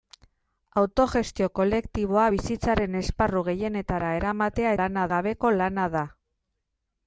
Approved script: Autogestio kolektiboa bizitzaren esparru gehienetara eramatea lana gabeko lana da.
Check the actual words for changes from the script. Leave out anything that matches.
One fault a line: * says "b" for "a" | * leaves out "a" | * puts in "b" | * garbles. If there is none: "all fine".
all fine